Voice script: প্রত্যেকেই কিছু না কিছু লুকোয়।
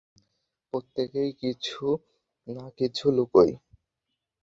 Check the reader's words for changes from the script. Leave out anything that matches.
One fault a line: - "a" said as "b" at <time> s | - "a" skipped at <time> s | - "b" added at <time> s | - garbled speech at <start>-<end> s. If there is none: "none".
none